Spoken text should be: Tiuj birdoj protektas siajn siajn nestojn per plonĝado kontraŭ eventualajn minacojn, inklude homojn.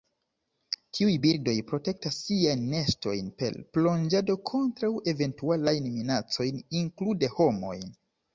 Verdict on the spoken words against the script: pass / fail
fail